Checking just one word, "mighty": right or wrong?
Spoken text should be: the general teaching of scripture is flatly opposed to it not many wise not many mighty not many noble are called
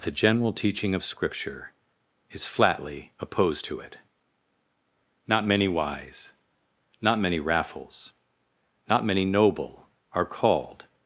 wrong